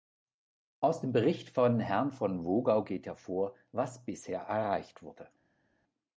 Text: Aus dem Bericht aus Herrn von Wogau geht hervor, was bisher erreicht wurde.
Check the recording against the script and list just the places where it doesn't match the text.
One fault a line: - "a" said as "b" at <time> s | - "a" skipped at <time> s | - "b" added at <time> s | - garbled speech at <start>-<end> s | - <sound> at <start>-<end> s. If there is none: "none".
- "aus" said as "von" at 1.5 s